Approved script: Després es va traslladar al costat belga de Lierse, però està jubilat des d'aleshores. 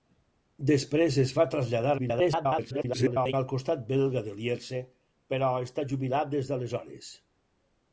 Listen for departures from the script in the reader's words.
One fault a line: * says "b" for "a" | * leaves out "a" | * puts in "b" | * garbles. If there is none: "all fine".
* garbles